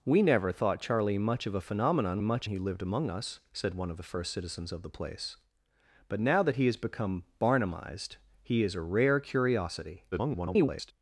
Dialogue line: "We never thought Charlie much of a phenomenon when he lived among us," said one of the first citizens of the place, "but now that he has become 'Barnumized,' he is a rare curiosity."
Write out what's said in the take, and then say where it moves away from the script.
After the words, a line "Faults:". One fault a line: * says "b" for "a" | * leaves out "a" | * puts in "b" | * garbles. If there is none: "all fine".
"We never thought Charlie much of a phenomenon much he lived among us," said one of the first citizens of the place, "but now that he has become 'Barnumized,' he is a rare curiosity." [garbled]
Faults:
* says "much" for "when"
* garbles